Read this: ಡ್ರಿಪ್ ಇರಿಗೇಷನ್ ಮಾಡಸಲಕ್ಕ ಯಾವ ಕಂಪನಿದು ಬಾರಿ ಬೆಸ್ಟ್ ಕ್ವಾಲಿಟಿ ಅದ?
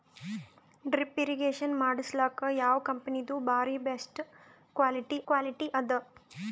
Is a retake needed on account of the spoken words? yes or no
yes